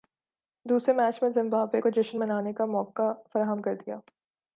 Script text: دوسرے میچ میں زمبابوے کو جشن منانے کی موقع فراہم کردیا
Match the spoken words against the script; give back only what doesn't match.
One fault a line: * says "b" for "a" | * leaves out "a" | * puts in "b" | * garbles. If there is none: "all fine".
* says "کا" for "کی"